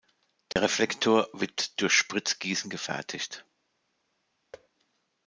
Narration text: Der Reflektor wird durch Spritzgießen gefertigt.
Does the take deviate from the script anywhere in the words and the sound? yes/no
yes